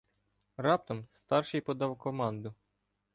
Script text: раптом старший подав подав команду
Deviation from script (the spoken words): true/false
true